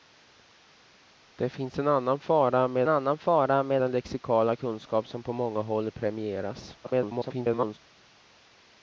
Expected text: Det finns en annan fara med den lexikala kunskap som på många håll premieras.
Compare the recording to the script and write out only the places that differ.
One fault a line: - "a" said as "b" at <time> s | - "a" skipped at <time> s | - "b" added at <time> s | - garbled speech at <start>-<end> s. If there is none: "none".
- "annan fara med" added at 2.9 s
- garbled speech at 6.8-7.8 s